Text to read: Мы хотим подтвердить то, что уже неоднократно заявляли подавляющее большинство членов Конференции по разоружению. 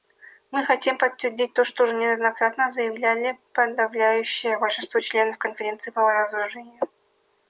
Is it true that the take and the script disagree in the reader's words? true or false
false